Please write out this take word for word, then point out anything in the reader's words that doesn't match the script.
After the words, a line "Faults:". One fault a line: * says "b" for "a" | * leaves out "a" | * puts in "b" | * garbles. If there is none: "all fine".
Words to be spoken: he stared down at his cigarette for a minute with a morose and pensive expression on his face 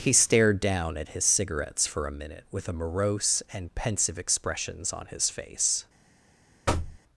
he stared down at his cigarettes for a minute with a morose and pensive expressions on his face
Faults:
* says "cigarettes" for "cigarette"
* says "expressions" for "expression"